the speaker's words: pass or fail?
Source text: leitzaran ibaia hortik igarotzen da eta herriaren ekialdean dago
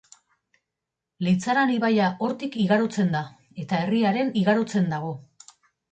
fail